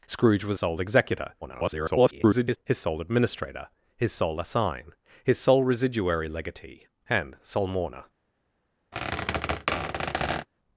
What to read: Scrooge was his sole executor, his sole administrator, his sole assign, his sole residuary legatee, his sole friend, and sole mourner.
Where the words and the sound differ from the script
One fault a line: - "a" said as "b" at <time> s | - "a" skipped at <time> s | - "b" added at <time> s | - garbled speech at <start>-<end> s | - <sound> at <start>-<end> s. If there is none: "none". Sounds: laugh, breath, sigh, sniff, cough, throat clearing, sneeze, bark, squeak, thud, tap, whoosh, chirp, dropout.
- "his" skipped at 0.6 s
- garbled speech at 1.4-2.6 s
- "his sole friend" skipped at 6.9 s
- squeak at 8.9-10.5 s